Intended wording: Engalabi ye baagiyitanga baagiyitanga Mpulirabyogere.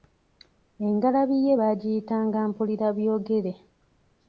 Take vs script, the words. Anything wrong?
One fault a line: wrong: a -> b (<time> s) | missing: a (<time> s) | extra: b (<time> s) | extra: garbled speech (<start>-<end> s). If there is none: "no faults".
missing: baagiyitanga (2.4 s)